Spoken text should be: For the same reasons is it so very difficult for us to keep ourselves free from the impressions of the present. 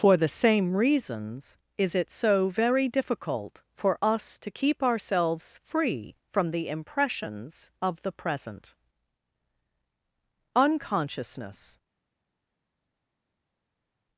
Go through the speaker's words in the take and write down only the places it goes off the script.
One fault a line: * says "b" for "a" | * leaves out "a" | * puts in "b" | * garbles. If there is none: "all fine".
* puts in "Unconsciousness"